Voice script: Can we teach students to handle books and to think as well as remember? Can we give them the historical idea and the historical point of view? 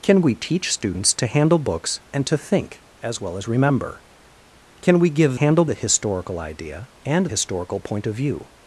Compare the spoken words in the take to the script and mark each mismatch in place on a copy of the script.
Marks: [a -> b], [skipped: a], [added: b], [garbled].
Can we teach students to handle books and to think as well as remember? Can we give [them -> handle] the historical idea and [skipped: the] historical point of view?